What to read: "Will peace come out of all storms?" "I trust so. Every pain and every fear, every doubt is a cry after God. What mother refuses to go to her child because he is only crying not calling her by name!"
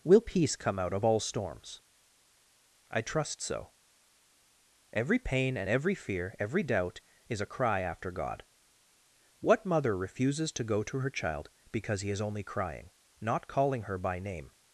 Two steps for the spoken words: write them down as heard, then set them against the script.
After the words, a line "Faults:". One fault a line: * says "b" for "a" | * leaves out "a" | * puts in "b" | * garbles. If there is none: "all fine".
"Will peace come out of all storms?" "I trust so. Every pain and every fear, every doubt is a cry after God. What mother refuses to go to her child because he is only crying not calling her by name!"
Faults:
all fine